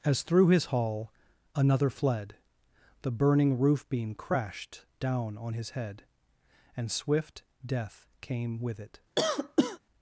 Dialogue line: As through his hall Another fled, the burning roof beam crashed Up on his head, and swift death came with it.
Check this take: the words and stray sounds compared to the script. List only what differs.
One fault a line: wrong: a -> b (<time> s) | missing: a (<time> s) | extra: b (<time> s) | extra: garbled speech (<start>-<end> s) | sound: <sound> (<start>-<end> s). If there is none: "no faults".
wrong: Up -> Down (5.0 s)
sound: cough (9.2-9.8 s)